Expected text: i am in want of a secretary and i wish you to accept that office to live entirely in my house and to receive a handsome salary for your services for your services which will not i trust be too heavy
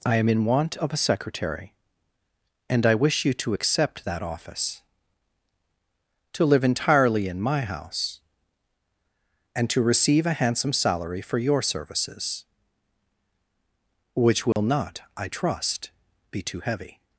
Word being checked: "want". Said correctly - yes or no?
yes